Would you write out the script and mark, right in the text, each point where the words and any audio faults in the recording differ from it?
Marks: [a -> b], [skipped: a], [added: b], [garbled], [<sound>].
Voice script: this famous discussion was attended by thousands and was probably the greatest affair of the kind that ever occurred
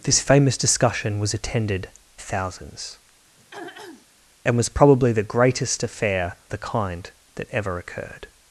this famous discussion was attended [skipped: by] thousands [throat clearing] and was probably the greatest affair [skipped: of] the kind that ever occurred